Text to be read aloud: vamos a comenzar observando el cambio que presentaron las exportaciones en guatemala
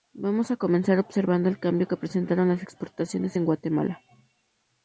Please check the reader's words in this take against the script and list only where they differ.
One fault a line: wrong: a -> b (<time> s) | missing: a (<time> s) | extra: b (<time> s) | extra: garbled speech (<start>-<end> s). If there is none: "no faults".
no faults